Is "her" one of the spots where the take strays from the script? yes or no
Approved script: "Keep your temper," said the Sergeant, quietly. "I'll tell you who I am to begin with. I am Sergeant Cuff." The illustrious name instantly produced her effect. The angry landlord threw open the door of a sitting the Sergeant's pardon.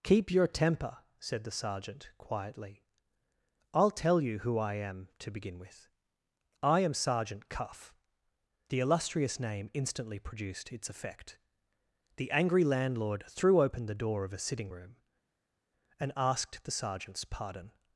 yes